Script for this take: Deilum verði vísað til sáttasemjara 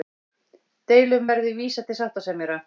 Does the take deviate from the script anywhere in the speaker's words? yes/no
no